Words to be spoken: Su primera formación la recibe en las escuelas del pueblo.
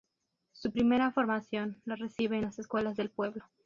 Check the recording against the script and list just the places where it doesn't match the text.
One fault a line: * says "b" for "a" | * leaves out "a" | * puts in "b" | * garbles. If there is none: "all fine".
all fine